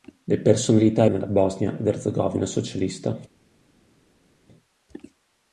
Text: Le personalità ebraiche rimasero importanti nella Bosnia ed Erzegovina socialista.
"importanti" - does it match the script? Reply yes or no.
no